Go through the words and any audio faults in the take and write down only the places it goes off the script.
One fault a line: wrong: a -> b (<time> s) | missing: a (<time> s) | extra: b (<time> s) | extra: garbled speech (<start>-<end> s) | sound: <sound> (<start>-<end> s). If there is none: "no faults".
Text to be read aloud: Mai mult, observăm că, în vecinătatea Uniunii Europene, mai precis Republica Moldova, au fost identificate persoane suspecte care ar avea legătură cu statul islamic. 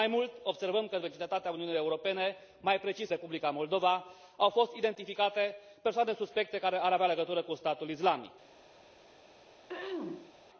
sound: throat clearing (9.7-10.3 s)